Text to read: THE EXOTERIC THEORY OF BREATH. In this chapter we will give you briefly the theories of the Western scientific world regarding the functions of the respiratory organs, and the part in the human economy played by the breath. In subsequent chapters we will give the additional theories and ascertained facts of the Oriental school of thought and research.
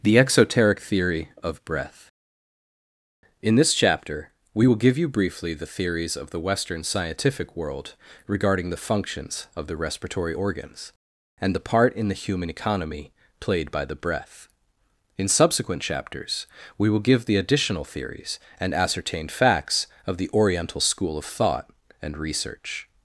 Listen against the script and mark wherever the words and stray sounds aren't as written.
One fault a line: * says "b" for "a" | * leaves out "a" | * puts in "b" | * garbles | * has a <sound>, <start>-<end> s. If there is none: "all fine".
all fine